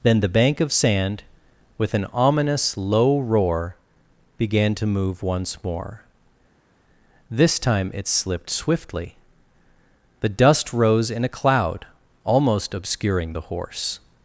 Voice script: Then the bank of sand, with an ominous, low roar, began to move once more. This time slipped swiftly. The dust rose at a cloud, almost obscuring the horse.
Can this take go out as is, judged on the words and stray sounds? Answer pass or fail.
fail